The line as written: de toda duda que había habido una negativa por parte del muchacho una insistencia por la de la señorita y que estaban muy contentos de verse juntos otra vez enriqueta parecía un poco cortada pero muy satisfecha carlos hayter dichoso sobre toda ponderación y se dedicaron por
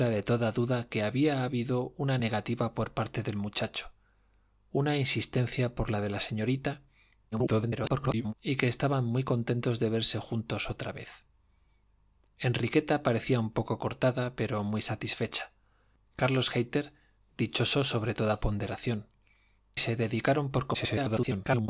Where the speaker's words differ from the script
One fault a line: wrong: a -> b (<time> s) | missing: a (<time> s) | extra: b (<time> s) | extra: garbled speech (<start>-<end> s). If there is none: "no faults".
extra: garbled speech (7.3-8.3 s)
missing: y (19.1 s)
extra: garbled speech (20.7-21.7 s)